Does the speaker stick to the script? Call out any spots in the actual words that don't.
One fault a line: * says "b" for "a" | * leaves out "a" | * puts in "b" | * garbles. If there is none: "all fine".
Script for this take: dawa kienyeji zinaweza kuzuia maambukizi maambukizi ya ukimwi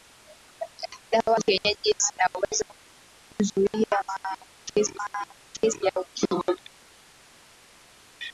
all fine